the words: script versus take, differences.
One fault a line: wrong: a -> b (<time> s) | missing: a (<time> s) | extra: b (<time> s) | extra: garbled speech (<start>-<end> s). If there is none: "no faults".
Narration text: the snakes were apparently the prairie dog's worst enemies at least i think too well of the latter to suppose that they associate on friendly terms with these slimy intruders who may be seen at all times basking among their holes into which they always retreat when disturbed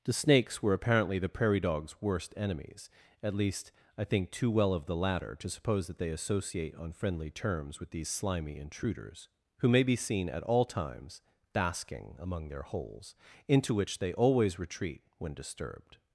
no faults